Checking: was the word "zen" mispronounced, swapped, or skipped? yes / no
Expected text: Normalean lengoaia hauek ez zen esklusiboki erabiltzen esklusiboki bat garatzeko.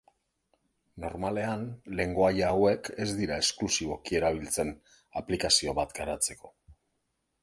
yes